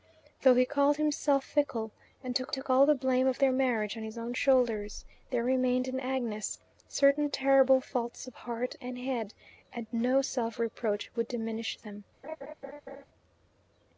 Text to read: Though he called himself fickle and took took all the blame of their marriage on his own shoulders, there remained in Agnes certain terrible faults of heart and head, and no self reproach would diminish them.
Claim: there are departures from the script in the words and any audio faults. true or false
true